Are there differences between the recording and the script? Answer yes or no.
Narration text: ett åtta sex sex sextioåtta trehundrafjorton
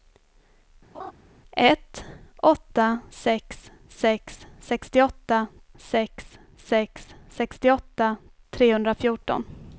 yes